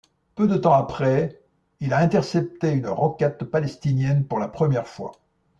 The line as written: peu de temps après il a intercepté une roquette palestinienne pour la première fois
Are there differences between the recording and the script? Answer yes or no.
no